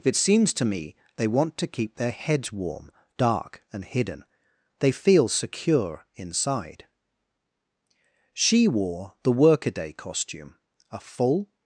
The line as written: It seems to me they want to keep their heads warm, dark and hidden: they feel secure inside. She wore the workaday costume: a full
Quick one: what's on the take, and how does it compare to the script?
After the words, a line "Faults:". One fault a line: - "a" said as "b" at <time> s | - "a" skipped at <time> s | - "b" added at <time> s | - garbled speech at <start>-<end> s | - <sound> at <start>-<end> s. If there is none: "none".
It seems to me they want to keep their heads warm, dark and hidden: they feel secure inside. She wore the workaday costume: a full
Faults:
none